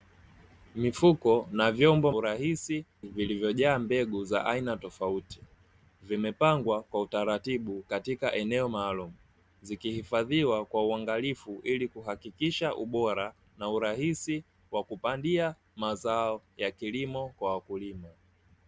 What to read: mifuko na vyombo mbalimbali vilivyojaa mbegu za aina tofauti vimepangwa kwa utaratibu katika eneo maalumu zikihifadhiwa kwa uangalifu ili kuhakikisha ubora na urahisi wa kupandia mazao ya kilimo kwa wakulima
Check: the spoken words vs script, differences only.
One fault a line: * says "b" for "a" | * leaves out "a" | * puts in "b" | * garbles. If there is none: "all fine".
* says "urahisi" for "mbalimbali"